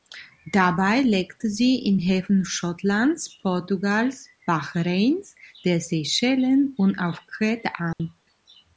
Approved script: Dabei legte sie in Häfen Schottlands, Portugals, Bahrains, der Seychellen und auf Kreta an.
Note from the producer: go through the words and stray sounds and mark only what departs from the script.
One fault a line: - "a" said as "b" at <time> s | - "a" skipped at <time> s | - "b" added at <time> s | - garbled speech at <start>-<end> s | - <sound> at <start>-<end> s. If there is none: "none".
- dropout at 7.9-8.0 s